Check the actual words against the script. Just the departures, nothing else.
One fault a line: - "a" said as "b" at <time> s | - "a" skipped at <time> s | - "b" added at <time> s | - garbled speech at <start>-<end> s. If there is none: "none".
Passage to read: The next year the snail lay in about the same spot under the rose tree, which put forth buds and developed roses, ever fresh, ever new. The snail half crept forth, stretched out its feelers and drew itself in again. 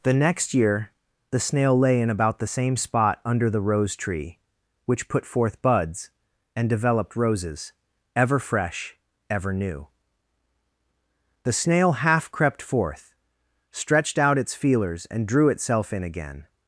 none